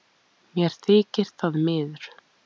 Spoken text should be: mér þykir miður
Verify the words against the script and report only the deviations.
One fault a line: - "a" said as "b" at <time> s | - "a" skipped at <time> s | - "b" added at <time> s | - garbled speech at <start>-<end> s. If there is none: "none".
- "það" added at 1.4 s